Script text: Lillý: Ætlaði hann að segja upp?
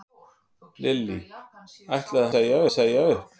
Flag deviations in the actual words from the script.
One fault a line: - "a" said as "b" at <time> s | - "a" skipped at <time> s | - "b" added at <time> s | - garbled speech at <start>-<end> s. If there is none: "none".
- "hann" said as "segja" at 2.3 s